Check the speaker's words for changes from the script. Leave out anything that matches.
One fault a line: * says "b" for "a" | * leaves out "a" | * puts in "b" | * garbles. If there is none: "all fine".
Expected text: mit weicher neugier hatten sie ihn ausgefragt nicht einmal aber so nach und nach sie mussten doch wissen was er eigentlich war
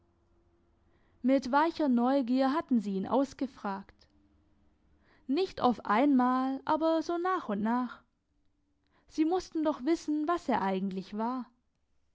* puts in "auf"